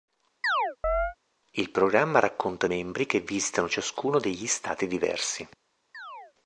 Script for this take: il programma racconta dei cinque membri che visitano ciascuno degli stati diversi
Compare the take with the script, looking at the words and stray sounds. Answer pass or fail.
fail